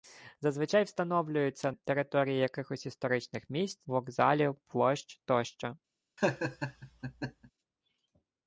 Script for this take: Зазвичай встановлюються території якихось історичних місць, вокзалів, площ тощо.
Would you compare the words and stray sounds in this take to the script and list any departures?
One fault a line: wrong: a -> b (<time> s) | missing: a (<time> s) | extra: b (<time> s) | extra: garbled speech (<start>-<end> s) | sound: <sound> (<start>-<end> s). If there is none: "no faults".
sound: laugh (6.2-7.5 s)